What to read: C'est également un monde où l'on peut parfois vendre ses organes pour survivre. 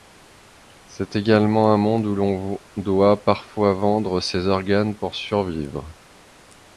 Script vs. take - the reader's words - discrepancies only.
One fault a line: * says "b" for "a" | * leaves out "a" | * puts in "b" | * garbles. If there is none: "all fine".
* says "doit" for "peut"